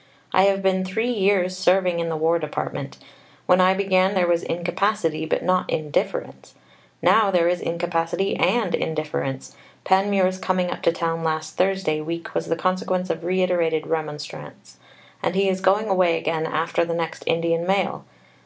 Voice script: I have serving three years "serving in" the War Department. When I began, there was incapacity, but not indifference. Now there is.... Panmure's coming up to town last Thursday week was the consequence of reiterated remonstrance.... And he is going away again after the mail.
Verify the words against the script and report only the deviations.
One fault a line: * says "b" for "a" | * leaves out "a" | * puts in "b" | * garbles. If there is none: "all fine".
* says "been" for "serving"
* puts in "incapacity and indifference"
* puts in "next Indian"